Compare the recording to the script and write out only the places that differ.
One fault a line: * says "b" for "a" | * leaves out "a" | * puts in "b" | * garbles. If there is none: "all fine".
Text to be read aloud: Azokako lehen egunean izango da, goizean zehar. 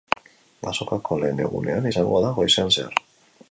all fine